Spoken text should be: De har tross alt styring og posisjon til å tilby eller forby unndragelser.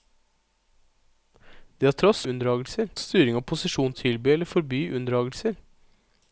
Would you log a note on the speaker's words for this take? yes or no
yes